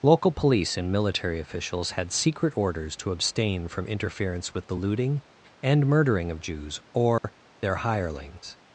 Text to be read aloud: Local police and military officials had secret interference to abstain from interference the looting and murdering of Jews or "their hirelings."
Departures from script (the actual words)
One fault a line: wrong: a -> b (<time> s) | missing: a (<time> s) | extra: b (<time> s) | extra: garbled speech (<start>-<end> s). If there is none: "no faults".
wrong: interference -> orders (2.6 s)
extra: with (4.5 s)